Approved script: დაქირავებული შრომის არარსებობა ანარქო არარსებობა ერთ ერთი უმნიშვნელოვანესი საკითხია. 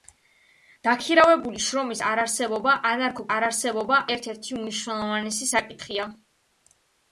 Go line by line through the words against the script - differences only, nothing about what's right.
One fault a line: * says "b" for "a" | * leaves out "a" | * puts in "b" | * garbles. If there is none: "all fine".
all fine